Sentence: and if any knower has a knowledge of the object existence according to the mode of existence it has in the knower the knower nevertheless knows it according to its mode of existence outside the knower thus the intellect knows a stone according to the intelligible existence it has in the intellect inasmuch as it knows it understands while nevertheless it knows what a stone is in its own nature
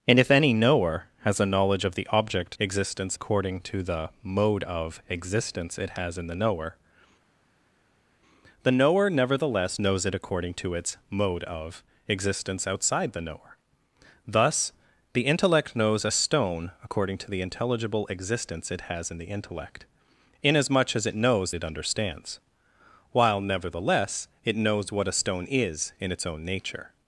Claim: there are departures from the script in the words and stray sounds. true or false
false